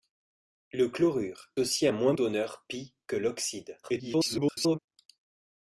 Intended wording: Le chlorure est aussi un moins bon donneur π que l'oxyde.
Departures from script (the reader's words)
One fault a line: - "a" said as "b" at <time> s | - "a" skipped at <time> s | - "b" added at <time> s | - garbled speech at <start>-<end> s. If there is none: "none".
- "est" skipped at 1.5 s
- "bon" skipped at 2.1 s
- garbled speech at 3.8-4.8 s